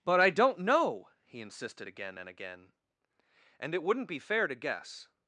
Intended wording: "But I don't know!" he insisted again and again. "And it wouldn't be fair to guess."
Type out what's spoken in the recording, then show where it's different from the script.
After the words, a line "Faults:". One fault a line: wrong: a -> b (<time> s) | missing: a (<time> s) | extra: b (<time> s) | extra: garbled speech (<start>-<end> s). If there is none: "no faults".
"But I don't know!" he insisted again and again. "And it wouldn't be fair to guess."
Faults:
no faults